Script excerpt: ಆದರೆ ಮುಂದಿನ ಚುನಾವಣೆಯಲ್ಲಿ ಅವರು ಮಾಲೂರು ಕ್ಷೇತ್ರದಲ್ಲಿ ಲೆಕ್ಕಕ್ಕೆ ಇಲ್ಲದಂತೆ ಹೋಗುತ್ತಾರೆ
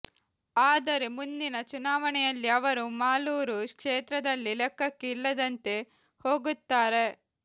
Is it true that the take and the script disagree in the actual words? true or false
false